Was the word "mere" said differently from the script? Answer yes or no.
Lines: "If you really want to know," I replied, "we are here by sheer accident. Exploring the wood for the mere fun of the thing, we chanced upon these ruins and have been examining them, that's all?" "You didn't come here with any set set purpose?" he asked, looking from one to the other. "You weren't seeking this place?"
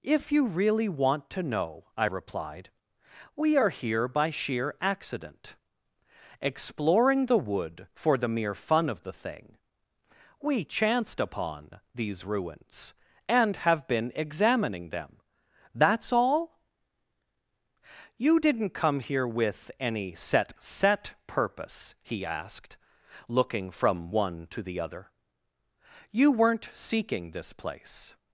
no